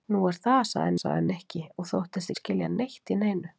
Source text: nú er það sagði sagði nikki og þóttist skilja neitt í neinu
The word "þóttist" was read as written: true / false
true